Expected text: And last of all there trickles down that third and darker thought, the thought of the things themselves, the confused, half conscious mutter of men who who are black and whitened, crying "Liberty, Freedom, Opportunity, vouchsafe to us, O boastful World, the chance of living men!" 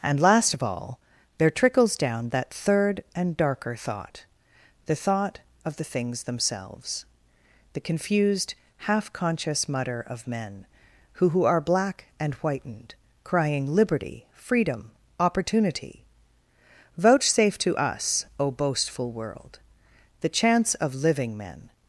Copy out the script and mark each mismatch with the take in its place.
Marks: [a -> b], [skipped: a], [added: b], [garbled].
And last of all there trickles down that third and darker thought, the thought of the things themselves, the confused, half conscious mutter of men who who are black and whitened, crying "Liberty, Freedom, Opportunity, vouchsafe to us, O boastful World, the chance of living men!"